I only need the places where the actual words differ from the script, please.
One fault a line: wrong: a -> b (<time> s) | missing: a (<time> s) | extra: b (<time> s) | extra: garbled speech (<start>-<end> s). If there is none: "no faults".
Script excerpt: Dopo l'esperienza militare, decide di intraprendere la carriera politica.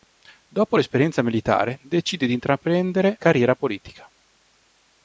missing: la (3.2 s)